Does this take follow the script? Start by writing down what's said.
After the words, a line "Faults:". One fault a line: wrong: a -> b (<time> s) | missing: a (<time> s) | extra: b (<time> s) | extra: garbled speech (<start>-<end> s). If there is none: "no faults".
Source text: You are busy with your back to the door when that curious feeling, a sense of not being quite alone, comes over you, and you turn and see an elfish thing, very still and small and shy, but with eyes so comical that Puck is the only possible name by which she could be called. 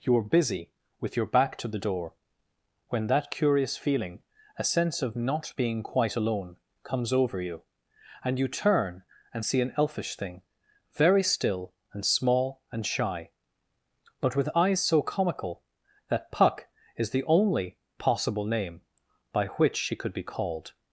You are busy with your back to the door when that curious feeling, a sense of not being quite alone, comes over you, and you turn and see an elfish thing, very still and small and shy, but with eyes so comical that Puck is the only possible name by which she could be called.
Faults:
no faults